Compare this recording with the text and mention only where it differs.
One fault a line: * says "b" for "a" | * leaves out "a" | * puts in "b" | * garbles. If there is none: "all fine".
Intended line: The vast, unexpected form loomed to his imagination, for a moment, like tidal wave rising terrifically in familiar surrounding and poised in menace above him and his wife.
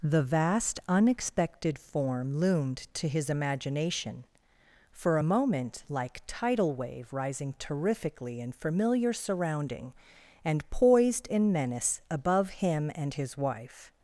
all fine